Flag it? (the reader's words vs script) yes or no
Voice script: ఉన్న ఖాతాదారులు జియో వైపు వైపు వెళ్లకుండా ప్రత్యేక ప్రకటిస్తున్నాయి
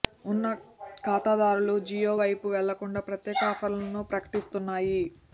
yes